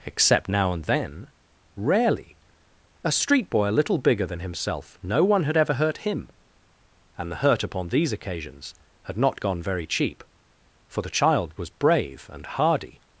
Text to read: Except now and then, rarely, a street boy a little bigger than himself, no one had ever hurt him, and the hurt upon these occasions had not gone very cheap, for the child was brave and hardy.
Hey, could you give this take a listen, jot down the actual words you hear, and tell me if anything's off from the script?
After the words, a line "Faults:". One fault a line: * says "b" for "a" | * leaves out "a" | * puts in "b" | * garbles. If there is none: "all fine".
Except now and then, rarely, a street boy a little bigger than himself, no one had ever hurt him, and the hurt upon these occasions had not gone very cheap, for the child was brave and hardy.
Faults:
all fine